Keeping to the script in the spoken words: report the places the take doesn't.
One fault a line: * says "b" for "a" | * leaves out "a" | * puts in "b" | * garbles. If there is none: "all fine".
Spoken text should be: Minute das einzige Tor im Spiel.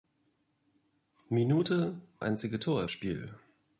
* leaves out "das"
* leaves out "im"